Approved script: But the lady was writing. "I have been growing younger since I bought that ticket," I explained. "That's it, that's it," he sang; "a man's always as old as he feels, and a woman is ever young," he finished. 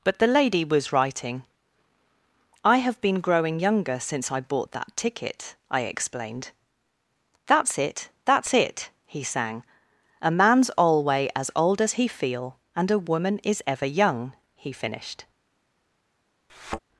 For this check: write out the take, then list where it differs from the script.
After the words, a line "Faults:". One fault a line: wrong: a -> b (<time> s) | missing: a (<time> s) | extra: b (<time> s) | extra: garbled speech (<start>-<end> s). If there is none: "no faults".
But the lady was writing. "I have been growing younger since I bought that ticket," I explained. "That's it, that's it," he sang; "a man's alway as old as he feel, and a woman is ever young," he finished.
Faults:
wrong: always -> alway (10.8 s)
wrong: feels -> feel (12.1 s)